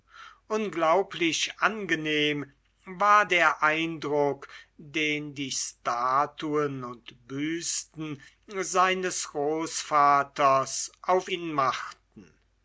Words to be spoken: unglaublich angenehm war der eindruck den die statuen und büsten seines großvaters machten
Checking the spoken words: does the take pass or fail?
fail